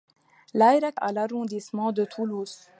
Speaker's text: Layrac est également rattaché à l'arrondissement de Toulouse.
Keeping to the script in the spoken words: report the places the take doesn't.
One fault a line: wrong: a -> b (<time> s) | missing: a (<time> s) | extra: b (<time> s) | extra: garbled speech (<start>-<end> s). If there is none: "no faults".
missing: est également rattaché (1.0 s)